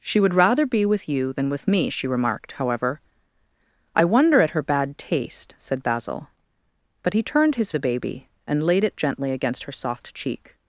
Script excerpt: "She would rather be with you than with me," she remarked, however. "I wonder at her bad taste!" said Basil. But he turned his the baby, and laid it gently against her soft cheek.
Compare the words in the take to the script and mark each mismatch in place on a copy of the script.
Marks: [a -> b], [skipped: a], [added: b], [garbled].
"She would rather be with you than with me," she remarked, however. "I wonder at her bad taste!" said Basil. But he turned his the baby, and laid it gently against her soft cheek.